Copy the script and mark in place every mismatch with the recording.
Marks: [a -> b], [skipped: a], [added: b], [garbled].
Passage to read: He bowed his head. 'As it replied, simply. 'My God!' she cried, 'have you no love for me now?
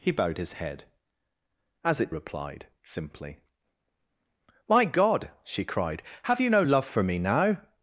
He bowed his head. 'As it replied, simply. 'My God!' she cried, 'have you no love for me now?